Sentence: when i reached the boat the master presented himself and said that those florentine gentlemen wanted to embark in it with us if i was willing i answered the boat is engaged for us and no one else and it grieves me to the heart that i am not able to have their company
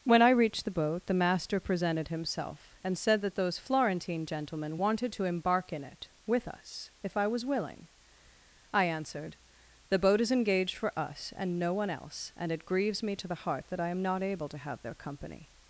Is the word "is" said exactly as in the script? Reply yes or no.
yes